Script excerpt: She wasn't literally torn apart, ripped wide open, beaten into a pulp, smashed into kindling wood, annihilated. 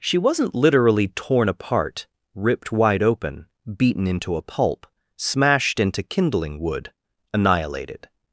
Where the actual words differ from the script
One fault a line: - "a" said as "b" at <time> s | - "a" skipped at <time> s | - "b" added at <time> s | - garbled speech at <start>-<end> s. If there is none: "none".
none